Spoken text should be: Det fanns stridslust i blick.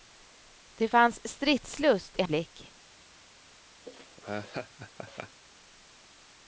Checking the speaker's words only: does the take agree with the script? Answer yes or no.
yes